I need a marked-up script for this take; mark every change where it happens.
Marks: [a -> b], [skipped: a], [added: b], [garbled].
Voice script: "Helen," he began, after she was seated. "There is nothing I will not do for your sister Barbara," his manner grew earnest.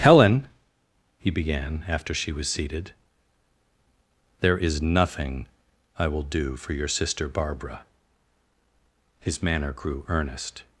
"Helen," he began, after she was seated. "There is nothing I will [skipped: not] do for your sister Barbara," his manner grew earnest.